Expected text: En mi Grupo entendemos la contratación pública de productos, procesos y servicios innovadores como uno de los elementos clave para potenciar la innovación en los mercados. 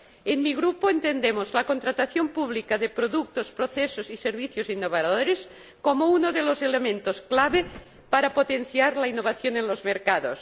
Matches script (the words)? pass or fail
pass